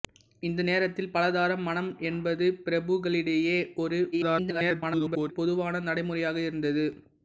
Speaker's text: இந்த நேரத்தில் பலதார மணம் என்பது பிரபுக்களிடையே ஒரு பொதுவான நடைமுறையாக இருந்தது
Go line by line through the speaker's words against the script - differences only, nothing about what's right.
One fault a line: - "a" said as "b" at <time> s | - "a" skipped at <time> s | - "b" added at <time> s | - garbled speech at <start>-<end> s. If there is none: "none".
- garbled speech at 4.1-5.3 s